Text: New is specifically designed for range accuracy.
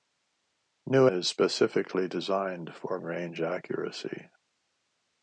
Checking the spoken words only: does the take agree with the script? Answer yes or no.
yes